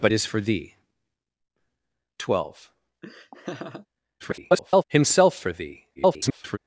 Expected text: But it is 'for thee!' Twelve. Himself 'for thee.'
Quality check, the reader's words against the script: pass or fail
fail